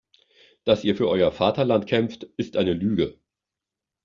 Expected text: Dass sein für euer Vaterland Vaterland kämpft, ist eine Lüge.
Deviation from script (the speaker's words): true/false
true